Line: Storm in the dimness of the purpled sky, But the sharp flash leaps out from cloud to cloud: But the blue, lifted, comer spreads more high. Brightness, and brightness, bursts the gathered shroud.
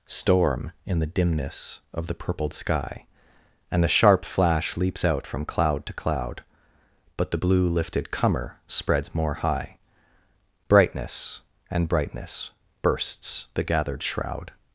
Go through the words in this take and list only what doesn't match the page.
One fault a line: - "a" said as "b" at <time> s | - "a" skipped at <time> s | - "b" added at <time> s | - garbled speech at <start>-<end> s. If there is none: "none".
- "But" said as "And" at 3.7 s